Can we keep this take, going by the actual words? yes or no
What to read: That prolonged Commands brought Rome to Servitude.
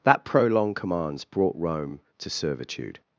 yes